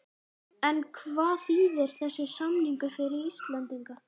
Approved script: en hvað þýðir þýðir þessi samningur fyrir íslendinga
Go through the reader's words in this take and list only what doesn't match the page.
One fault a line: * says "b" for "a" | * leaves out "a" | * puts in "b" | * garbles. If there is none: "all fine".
* leaves out "þýðir"